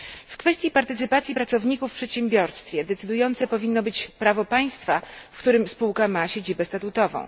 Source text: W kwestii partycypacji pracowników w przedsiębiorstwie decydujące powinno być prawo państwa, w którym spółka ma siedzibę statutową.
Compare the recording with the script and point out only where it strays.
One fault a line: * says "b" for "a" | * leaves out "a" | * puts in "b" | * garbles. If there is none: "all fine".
all fine